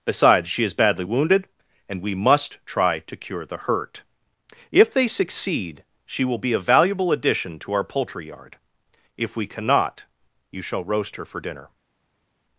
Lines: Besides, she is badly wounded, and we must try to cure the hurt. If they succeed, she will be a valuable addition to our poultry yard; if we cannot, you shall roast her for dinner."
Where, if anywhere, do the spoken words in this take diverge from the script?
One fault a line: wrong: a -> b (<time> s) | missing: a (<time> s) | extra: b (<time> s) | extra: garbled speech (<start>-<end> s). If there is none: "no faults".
no faults